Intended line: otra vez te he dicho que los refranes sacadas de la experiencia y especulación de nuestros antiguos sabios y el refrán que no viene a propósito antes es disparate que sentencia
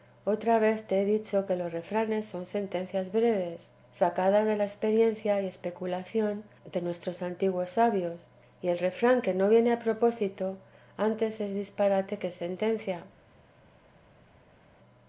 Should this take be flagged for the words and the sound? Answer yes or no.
yes